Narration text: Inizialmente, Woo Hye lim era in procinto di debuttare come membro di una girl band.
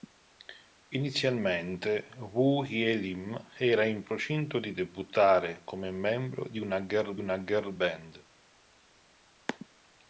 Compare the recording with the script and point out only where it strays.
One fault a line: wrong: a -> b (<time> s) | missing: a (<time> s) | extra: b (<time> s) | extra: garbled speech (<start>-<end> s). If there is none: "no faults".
extra: una girl (7.2 s)